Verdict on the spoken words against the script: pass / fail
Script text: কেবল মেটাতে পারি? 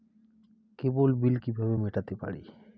fail